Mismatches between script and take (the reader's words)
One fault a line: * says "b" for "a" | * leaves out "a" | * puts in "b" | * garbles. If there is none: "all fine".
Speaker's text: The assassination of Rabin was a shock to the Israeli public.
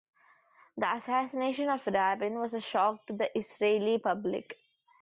all fine